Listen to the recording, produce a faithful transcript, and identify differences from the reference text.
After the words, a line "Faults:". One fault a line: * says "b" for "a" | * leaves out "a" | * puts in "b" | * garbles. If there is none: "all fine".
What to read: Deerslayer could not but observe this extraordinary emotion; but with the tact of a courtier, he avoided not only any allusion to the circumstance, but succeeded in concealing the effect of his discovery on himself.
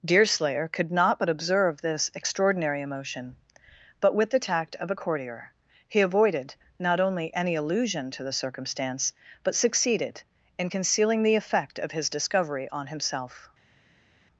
Deerslayer could not but observe this extraordinary emotion; but with the tact of a courtier, he avoided not only any allusion to the circumstance, but succeeded in concealing the effect of his discovery on himself.
Faults:
all fine